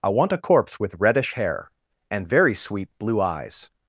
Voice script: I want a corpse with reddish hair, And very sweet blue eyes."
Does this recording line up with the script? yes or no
yes